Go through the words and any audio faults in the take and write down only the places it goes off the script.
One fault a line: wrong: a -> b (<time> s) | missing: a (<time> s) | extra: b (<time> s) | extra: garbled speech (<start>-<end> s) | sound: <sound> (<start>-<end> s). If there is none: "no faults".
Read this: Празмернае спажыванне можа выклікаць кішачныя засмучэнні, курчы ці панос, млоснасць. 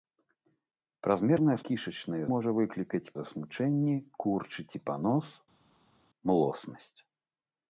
wrong: спажыванне -> кішачныя (1.7 s)
missing: кішачныя (3.1 s)